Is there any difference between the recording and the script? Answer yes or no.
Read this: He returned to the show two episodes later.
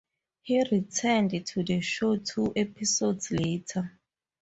no